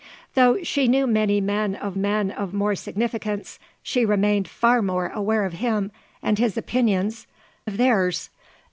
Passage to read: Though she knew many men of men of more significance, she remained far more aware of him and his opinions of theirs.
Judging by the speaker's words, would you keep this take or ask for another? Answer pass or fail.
pass